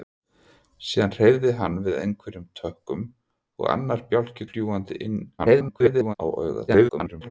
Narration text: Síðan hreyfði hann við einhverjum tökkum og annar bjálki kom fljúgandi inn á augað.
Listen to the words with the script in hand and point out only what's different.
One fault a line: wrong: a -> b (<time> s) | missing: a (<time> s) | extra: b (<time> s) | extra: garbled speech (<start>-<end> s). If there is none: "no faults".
missing: kom (4.5 s)
extra: garbled speech (5.4-6.1 s)
extra: garbled speech (6.7-7.3 s)